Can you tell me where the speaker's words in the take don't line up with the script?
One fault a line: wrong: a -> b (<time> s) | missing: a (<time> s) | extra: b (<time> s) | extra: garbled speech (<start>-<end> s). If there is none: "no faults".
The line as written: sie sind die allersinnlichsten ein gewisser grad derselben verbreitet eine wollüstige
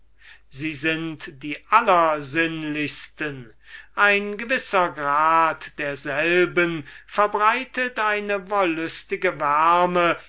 no faults